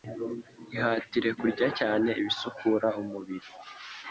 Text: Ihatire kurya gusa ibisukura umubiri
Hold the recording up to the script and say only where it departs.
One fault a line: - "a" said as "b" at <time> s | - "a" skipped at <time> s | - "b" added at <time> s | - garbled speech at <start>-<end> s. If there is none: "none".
- "gusa" said as "cyane" at 1.8 s